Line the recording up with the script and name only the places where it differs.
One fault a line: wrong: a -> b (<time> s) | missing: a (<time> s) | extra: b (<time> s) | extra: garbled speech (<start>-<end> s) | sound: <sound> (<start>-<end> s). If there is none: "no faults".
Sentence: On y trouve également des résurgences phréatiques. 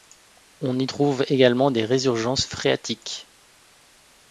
no faults